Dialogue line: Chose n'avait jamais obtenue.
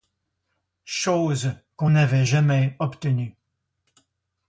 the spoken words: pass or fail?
fail